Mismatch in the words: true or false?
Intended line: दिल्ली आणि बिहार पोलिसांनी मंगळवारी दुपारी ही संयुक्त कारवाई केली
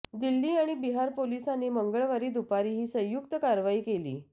false